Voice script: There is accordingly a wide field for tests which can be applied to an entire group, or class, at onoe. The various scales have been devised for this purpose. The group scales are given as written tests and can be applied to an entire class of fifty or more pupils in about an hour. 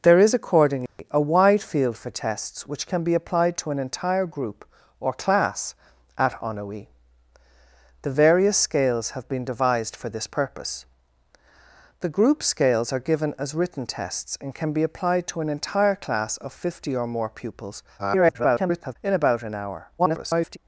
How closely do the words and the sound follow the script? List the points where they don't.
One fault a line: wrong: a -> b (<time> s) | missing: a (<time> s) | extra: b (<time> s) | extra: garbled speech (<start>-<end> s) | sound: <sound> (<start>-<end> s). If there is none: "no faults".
sound: dropout (0.9-1.0 s)
extra: garbled speech (18.0-19.0 s)
extra: garbled speech (20.0-20.6 s)